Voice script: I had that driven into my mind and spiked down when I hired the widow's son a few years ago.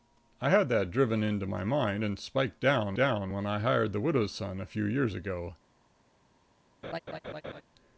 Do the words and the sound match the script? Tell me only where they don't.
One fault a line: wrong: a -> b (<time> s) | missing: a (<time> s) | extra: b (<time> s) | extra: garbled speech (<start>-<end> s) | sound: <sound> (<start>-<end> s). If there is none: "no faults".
extra: down (2.9 s)
sound: laugh (6.8-7.6 s)